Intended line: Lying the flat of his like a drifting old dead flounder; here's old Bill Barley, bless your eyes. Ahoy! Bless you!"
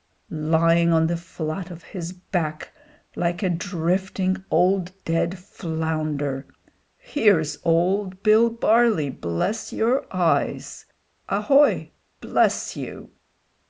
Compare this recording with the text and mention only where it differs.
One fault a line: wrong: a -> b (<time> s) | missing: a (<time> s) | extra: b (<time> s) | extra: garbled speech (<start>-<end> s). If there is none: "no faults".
extra: on (0.9 s)
extra: back (2.1 s)